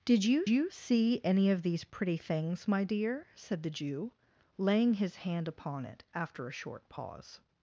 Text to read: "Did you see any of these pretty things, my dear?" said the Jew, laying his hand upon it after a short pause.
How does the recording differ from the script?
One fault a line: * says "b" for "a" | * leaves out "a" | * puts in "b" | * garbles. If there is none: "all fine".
* puts in "you"